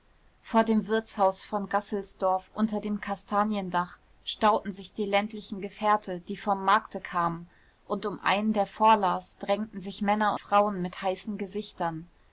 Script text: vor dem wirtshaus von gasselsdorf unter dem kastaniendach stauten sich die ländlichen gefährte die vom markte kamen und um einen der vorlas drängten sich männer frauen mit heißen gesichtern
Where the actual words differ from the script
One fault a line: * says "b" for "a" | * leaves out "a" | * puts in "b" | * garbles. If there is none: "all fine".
all fine